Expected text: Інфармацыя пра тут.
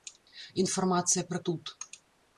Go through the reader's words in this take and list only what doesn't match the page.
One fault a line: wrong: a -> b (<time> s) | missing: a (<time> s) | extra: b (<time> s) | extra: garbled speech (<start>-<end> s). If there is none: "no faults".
no faults